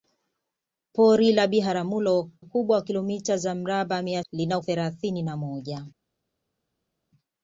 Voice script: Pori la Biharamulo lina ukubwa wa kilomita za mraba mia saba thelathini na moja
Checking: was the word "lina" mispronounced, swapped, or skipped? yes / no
yes